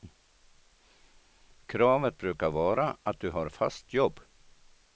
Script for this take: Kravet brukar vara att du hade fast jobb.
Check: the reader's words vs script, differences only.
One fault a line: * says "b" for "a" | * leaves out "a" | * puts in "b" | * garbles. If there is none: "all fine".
* says "har" for "hade"